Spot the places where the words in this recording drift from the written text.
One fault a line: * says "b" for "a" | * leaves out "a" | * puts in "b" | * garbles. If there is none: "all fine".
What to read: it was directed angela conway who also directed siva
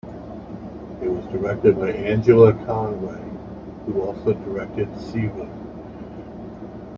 * puts in "by"